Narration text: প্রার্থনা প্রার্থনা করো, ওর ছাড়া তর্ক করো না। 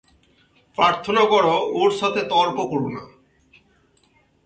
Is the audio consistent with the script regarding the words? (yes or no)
no